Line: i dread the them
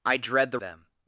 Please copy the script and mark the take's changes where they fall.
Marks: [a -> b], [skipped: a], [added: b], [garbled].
i dread the them